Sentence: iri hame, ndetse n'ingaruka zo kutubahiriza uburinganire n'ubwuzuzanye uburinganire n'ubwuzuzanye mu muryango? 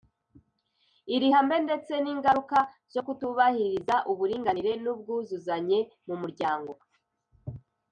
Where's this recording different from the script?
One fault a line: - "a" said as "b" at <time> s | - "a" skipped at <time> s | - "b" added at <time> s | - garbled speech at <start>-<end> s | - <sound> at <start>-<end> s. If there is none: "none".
- "uburinganire n'ubwuzuzanye" skipped at 5.8 s